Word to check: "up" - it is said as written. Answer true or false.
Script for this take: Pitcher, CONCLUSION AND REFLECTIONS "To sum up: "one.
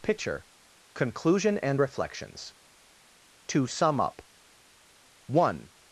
true